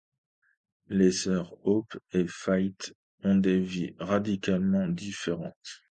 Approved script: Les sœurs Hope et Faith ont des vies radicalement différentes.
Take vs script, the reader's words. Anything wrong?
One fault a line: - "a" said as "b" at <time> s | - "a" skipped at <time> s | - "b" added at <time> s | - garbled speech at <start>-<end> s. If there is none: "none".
none